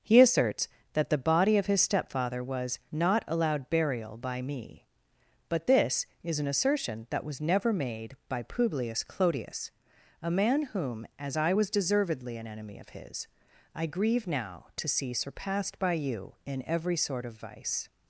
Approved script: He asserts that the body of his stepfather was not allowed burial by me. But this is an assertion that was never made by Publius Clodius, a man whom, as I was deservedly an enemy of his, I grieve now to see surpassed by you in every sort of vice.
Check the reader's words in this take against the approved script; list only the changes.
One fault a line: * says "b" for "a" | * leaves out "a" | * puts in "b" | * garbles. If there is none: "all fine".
all fine